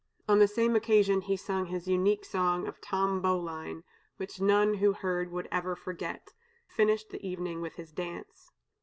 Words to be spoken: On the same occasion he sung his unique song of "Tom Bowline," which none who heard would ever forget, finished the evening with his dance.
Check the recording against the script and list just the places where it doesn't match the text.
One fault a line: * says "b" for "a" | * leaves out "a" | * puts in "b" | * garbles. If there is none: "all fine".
all fine